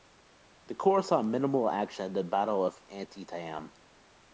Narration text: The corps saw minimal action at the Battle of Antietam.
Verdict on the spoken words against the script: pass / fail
pass